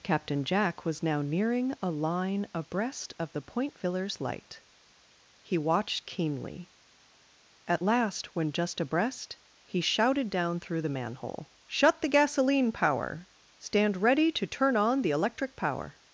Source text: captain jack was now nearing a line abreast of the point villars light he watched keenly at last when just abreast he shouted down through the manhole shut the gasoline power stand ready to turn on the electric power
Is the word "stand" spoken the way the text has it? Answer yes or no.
yes